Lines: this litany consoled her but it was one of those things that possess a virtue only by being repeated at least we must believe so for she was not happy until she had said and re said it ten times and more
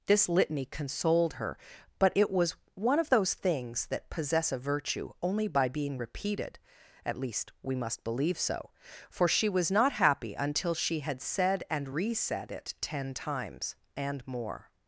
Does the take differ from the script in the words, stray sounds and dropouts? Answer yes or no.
no